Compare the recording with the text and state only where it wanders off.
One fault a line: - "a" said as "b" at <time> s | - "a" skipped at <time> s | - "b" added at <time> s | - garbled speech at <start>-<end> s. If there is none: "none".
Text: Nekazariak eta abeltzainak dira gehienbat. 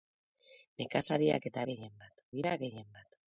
- "abeltzainak" said as "gehienbat" at 1.7 s